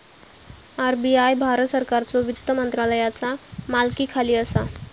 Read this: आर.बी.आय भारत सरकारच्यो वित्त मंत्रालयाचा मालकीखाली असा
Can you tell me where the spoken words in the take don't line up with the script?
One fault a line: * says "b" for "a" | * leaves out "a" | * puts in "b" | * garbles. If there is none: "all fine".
all fine